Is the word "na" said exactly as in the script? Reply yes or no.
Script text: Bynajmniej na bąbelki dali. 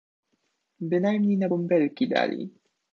yes